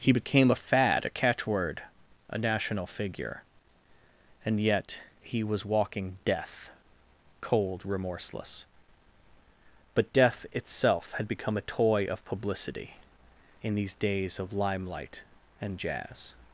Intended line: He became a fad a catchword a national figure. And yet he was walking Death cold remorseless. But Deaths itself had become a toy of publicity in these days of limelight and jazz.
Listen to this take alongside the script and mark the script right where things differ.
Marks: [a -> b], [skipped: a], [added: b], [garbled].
He became a fad a catchword a national figure. And yet he was walking Death cold remorseless. But [Deaths -> Death] itself had become a toy of publicity in these days of limelight and jazz.